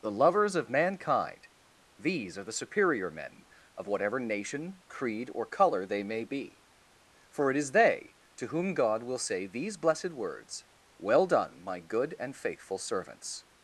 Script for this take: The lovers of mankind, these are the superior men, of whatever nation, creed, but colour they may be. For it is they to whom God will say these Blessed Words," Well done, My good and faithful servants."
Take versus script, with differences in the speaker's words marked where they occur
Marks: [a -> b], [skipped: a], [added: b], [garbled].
The lovers of mankind, these are the superior men, of whatever nation, creed, [but -> or] colour they may be. For it is they to whom God will say these Blessed Words," Well done, My good and faithful servants."